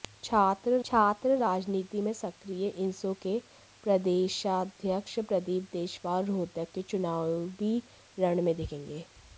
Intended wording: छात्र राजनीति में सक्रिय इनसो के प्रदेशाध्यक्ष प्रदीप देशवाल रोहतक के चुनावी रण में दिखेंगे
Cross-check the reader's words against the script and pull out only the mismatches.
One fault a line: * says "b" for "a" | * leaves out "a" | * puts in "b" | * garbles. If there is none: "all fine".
* puts in "छात्र"